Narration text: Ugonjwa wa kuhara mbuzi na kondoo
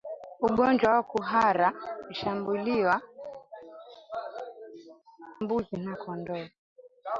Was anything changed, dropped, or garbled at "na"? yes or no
no